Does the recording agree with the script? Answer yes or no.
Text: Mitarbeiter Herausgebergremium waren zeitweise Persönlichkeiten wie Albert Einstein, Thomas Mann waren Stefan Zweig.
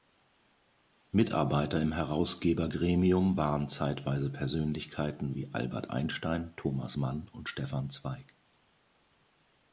no